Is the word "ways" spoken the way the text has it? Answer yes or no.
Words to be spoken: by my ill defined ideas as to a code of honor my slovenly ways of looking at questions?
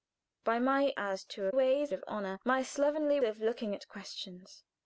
no